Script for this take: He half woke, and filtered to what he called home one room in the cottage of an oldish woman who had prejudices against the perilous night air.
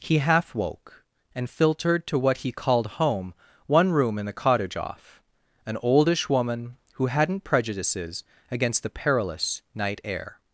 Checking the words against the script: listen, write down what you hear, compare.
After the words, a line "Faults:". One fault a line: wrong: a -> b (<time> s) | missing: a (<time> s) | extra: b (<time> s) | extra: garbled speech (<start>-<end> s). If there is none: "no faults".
He half woke, and filtered to what he called home one room in the cottage off an oldish woman who hadn't prejudices against the perilous night air.
Faults:
wrong: of -> off (4.8 s)
wrong: had -> hadn't (7.1 s)